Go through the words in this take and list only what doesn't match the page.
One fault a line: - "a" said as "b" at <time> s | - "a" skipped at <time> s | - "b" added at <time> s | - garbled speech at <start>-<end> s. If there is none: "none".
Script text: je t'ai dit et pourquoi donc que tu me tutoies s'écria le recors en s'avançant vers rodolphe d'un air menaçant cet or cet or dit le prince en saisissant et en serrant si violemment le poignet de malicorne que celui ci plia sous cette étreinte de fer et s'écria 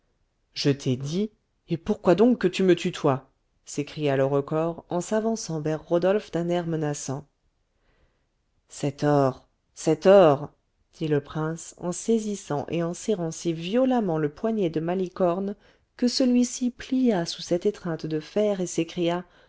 none